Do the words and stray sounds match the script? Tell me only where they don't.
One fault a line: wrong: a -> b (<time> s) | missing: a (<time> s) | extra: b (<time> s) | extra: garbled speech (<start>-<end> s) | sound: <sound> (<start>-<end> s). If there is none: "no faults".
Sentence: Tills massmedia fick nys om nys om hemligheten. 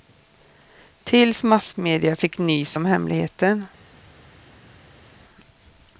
missing: nys om (2.8 s)